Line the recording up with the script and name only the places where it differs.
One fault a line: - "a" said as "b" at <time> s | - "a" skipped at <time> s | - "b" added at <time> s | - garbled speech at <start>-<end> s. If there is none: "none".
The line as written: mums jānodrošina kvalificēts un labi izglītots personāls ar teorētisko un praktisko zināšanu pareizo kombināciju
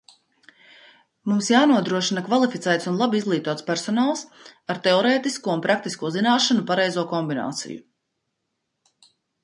none